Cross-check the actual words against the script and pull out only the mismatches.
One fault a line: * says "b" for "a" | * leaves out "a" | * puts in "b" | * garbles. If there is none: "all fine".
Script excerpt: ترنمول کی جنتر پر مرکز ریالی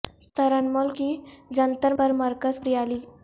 all fine